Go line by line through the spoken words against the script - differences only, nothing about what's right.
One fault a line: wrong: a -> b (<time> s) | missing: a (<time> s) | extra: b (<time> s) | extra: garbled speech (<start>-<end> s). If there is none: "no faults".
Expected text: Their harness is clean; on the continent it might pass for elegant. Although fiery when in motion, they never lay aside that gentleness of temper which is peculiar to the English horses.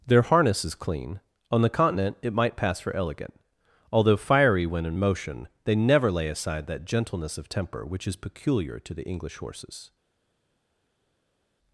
no faults